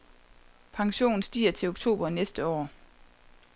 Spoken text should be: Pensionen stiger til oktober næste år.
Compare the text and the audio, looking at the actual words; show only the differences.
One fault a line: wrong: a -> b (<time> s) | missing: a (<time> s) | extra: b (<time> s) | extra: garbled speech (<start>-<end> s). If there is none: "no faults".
no faults